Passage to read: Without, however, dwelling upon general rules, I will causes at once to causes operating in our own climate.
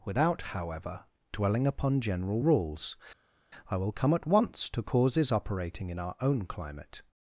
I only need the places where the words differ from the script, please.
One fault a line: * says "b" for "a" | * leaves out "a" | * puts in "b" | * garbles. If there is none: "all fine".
* says "come" for "causes"